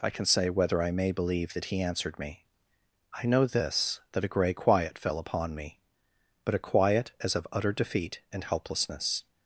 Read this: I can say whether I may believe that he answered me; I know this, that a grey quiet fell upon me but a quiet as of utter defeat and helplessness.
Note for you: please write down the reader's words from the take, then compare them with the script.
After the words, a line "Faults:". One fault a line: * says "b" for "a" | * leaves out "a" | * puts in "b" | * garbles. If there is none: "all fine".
I can say whether I may believe that he answered me; I know this, that a grey quiet fell upon me but a quiet as of utter defeat and helplessness.
Faults:
all fine